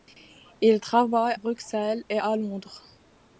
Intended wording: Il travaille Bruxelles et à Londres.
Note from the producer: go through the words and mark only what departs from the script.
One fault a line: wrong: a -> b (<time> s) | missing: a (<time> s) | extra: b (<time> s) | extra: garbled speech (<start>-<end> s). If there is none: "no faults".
no faults